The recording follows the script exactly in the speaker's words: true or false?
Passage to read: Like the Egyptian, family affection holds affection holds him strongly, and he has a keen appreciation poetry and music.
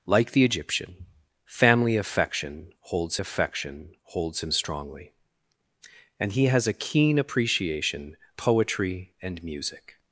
true